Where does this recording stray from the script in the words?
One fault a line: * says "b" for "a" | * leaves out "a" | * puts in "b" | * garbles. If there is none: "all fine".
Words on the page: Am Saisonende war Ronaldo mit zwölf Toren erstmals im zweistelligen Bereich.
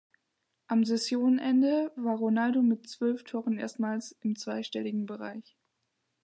all fine